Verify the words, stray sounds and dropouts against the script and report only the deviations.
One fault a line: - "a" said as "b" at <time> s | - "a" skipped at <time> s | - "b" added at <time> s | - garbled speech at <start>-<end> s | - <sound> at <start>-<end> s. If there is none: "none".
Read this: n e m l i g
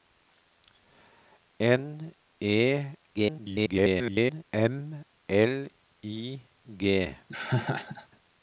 - garbled speech at 3.1-4.4 s
- laugh at 7.3-8.1 s